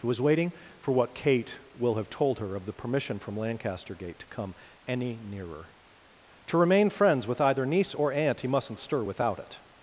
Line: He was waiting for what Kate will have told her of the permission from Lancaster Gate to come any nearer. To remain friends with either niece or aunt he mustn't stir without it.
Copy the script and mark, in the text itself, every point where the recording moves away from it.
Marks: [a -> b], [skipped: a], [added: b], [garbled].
He was waiting for what Kate will have told her of the permission from Lancaster Gate to come any nearer. To remain friends with either niece or aunt he mustn't stir without it.